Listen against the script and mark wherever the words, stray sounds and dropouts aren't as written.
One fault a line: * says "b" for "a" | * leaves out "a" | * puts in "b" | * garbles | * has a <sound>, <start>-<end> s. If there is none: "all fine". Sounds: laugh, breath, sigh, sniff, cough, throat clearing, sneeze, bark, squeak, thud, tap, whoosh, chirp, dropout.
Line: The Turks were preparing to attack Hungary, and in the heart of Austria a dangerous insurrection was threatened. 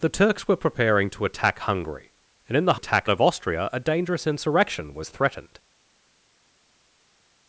* says "attack" for "heart"